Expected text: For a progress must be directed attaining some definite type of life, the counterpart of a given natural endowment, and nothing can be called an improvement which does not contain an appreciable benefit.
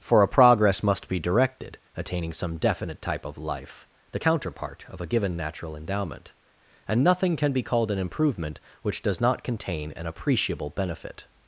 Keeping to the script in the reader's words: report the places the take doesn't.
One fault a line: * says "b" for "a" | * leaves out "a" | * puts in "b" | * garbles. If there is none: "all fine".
all fine